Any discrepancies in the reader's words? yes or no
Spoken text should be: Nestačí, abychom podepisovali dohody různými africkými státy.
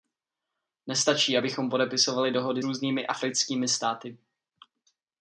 no